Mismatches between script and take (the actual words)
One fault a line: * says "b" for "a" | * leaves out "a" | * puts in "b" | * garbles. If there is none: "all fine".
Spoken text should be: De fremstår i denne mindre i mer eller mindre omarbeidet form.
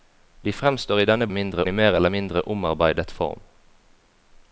all fine